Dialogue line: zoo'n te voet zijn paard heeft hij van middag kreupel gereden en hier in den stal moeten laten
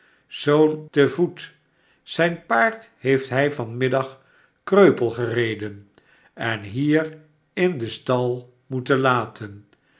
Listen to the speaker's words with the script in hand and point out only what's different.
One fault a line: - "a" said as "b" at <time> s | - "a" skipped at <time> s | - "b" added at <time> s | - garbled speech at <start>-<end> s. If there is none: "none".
none